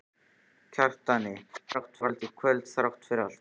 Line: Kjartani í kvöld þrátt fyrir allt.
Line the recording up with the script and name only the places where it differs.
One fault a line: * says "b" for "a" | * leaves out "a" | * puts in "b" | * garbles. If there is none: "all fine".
* garbles